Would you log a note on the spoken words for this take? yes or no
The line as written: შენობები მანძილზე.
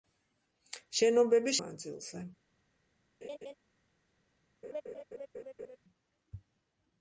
no